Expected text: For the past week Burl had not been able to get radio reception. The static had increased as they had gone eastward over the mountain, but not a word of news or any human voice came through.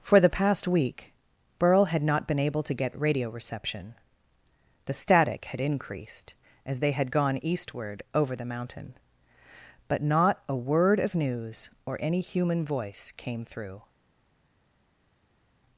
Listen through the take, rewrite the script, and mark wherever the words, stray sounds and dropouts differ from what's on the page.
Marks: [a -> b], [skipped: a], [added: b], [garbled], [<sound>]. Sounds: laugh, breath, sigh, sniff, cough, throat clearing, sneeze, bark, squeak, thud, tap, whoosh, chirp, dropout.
For the past week Burl had not been able to get radio reception. The static had increased as they had gone eastward over the mountain, but not a word of news or any human voice came through.